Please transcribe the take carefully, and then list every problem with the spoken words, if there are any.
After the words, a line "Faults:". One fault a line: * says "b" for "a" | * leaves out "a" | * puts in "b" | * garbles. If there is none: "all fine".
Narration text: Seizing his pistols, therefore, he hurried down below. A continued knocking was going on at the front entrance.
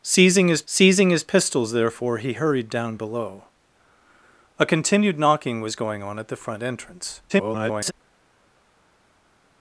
Seizing his seizing his pistols, therefore, he hurried down below. A continued knocking was going on at the front entrance. [garbled]
Faults:
* puts in "seizing his"
* garbles